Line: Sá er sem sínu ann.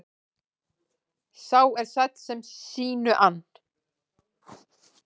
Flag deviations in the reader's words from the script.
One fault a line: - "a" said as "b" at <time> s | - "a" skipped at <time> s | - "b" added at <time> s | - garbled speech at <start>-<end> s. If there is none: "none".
- "sæll" added at 1.9 s